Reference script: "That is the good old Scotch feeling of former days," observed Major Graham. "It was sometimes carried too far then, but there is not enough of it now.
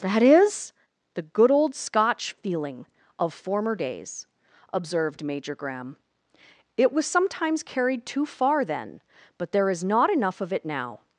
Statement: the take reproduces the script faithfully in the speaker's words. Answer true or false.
true